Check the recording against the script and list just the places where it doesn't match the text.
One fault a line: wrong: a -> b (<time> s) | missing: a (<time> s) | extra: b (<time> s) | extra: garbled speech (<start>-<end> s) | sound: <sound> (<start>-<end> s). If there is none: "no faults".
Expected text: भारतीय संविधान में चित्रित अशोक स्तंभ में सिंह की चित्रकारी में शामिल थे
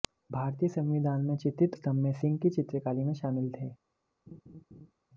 missing: अशोक (1.8 s)
sound: laugh (4.3-4.9 s)